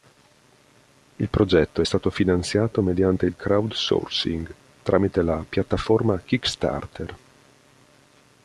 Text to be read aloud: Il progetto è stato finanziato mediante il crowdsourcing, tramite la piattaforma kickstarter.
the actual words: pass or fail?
pass